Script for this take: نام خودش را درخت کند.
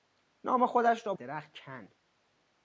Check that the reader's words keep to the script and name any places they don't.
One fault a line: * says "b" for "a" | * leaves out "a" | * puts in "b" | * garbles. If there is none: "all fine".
all fine